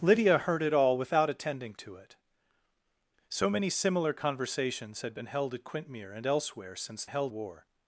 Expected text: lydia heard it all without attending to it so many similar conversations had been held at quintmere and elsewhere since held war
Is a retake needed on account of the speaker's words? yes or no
no